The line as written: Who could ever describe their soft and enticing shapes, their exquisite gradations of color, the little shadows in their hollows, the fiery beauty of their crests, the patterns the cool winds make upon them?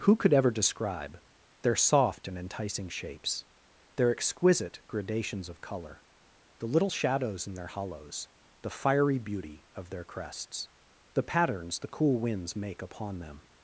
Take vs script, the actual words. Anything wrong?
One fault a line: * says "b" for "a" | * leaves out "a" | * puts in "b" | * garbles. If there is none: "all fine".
all fine